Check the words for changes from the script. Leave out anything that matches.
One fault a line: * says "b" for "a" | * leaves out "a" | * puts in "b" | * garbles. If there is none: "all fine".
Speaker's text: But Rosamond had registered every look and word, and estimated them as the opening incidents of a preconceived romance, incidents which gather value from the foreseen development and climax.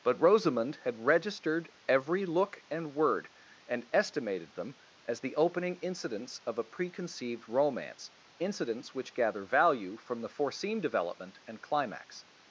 all fine